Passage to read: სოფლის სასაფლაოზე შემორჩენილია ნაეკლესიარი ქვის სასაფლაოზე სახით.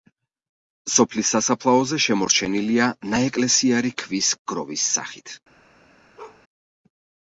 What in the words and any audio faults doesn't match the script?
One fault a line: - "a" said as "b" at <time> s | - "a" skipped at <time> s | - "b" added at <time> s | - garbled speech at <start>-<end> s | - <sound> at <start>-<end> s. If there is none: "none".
- "სასაფლაოზე" said as "გროვის" at 4.5 s
- bark at 6.2-6.4 s